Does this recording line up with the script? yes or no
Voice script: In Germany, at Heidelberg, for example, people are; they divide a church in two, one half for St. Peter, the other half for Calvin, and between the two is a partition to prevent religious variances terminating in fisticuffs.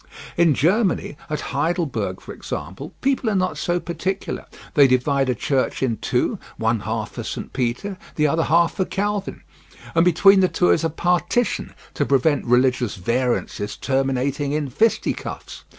no